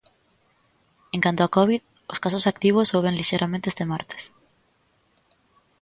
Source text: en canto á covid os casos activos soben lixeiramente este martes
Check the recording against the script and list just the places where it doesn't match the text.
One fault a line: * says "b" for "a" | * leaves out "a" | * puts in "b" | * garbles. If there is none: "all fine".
all fine